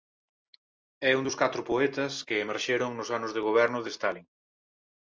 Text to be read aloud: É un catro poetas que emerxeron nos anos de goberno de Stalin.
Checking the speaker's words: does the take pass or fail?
fail